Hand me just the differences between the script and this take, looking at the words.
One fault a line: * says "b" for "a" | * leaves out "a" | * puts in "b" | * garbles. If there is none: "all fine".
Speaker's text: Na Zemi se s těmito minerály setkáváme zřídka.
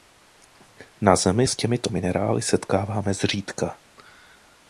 * leaves out "se"